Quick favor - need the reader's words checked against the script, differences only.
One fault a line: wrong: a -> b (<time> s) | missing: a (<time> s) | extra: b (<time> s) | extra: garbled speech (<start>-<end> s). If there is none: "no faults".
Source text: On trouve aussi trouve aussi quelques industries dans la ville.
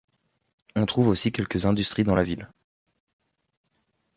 missing: trouve aussi (1.3 s)